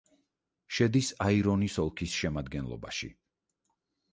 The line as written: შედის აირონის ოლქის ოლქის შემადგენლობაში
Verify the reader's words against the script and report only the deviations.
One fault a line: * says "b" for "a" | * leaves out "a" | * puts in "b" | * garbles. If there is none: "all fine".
* leaves out "ოლქის"